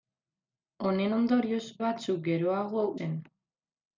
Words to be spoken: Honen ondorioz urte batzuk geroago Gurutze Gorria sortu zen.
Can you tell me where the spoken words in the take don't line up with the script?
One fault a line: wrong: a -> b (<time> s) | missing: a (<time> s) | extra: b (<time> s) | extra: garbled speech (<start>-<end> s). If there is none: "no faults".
missing: urte (1.6 s)
missing: Gurutze Gorria sortu (2.8 s)